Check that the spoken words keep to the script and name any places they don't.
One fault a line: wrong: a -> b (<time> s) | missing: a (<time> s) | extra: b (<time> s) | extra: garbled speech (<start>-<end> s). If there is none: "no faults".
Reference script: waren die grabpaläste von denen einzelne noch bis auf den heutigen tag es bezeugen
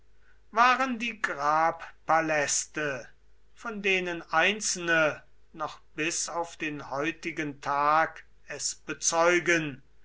no faults